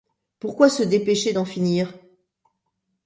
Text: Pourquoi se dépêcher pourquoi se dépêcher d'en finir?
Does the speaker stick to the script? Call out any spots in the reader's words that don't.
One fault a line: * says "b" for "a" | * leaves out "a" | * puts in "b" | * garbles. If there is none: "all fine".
* leaves out "pourquoi se dépêcher"